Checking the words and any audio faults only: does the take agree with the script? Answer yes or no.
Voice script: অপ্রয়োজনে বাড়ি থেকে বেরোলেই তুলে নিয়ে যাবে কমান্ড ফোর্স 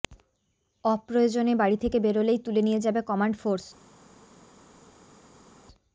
yes